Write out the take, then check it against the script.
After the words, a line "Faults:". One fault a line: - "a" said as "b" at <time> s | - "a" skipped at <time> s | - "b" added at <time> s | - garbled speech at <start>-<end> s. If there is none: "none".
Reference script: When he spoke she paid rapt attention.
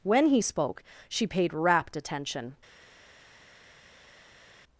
When he spoke she paid rapt attention.
Faults:
none